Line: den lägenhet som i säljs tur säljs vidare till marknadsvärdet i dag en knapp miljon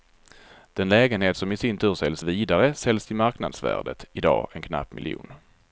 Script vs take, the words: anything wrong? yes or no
yes